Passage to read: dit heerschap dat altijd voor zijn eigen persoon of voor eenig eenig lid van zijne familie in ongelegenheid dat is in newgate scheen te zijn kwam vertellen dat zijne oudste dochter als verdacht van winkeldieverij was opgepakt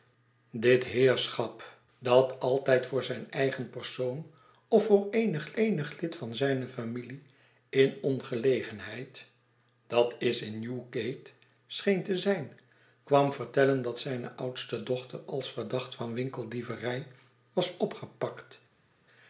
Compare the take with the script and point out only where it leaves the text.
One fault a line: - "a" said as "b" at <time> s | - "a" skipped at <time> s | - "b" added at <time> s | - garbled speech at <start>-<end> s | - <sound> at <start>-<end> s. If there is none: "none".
none